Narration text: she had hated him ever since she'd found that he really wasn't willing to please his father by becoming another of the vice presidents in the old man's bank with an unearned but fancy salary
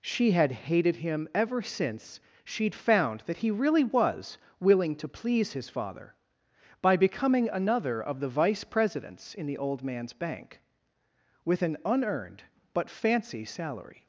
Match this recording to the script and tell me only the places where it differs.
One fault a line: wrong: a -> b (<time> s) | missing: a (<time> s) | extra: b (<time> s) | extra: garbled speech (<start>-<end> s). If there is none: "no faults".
wrong: wasn't -> was (3.8 s)